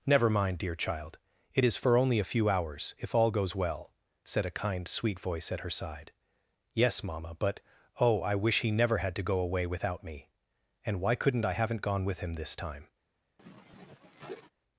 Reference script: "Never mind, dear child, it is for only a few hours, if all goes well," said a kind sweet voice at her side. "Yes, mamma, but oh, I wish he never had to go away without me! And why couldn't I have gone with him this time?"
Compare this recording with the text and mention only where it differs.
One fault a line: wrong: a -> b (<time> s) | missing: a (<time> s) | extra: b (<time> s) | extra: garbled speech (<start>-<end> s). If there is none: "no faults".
wrong: have -> haven't (11.5 s)